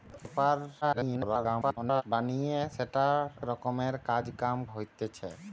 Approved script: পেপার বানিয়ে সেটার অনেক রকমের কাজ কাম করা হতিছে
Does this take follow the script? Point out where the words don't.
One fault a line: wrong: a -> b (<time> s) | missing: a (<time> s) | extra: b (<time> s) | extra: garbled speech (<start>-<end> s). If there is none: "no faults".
extra: garbled speech (0.8-2.0 s)
missing: অনেক (3.2 s)
missing: করা (4.6 s)